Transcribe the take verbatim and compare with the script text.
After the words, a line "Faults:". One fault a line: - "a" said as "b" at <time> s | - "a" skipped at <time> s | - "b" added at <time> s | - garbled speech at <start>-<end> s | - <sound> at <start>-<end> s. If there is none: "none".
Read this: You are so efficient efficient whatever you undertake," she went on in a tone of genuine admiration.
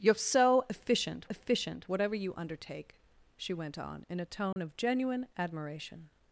You are so efficient efficient whatever you undertake," she went on in a tone of genuine admiration.
Faults:
- dropout at 4.5-4.6 s